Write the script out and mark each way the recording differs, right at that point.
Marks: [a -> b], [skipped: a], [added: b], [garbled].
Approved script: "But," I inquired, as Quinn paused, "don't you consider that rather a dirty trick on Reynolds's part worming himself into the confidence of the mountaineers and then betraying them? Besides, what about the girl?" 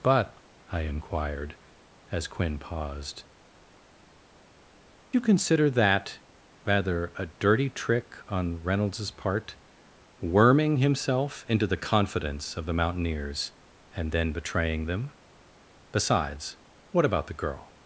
"But," I inquired, as Quinn paused, [skipped: "don't] you consider that rather a dirty trick on Reynolds's part worming himself into the confidence of the mountaineers and then betraying them? Besides, what about the girl?"